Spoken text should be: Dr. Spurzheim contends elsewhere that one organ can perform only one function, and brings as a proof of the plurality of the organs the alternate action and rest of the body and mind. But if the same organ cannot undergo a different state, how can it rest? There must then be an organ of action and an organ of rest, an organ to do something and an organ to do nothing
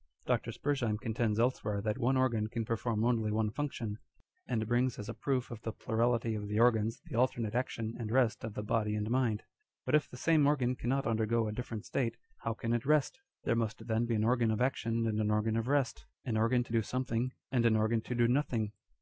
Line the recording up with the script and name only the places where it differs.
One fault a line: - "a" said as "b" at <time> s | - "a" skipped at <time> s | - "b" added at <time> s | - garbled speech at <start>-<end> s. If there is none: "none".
none